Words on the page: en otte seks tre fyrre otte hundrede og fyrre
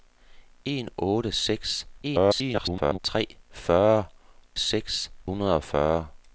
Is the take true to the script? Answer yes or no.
no